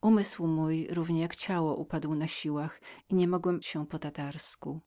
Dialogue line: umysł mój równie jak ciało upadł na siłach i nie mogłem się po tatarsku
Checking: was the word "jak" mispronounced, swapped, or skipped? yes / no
no